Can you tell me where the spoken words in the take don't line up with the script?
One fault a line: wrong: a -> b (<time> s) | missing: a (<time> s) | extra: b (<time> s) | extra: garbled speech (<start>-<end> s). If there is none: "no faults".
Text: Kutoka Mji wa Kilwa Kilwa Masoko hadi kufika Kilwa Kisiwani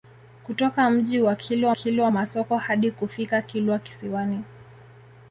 no faults